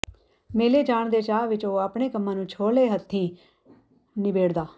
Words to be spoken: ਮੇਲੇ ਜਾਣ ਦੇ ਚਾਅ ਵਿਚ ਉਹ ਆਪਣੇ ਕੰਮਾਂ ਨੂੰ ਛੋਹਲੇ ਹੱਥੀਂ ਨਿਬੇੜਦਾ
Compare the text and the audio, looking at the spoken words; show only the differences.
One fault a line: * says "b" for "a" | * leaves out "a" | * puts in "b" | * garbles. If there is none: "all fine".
all fine